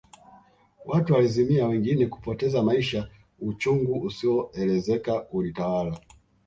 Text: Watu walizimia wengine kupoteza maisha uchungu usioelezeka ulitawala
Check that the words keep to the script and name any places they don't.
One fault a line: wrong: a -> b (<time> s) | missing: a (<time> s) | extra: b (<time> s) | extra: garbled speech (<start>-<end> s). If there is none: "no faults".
no faults